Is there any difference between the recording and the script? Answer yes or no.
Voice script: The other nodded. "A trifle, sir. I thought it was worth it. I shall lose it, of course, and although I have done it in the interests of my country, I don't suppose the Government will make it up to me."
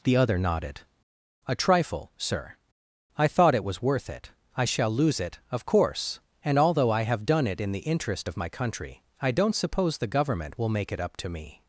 yes